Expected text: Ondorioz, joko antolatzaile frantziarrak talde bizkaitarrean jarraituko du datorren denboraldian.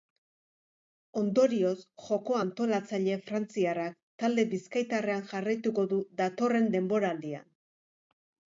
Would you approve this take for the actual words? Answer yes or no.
yes